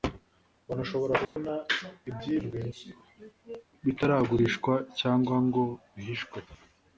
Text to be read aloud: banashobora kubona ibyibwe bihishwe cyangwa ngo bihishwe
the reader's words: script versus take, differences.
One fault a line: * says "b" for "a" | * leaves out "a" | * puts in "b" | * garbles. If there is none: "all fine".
* says "bitaragurishwa" for "bihishwe"